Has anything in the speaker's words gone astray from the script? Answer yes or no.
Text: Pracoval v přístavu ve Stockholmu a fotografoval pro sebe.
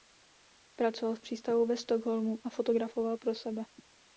no